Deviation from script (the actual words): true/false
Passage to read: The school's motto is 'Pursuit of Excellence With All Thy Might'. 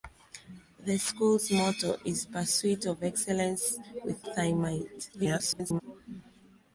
true